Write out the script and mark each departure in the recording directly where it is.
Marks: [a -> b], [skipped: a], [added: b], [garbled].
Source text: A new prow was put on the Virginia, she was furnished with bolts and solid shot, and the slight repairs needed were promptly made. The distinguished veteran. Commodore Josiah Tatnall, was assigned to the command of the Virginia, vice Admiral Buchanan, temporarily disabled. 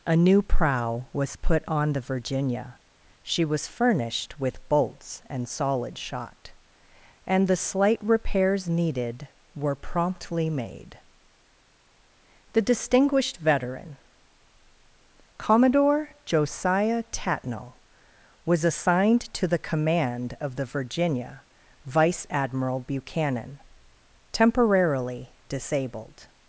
A new prow was put on the Virginia, she was furnished with bolts and solid shot, and the slight repairs needed were promptly made. The distinguished veteran. Commodore Josiah Tatnall, was assigned to the command of the Virginia, vice Admiral Buchanan, temporarily disabled.